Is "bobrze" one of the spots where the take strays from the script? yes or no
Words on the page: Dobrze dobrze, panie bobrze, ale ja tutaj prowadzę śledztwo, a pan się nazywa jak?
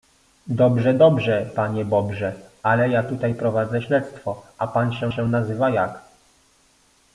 no